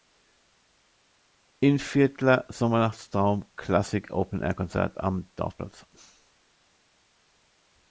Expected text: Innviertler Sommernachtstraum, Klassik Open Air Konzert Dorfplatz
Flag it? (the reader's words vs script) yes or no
yes